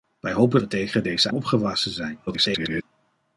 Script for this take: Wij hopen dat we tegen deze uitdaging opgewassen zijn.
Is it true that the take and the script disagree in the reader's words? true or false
true